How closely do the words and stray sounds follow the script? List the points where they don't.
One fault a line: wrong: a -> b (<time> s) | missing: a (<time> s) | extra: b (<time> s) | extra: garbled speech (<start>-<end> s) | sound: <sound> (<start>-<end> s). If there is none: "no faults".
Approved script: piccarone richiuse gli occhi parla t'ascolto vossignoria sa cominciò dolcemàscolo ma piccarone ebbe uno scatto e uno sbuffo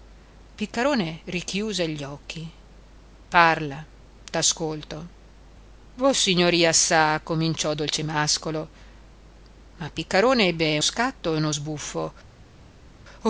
missing: uno (10.8 s)